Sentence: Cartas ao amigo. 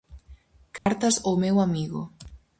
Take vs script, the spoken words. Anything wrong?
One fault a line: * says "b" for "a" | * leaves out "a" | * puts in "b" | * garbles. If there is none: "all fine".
* puts in "meu"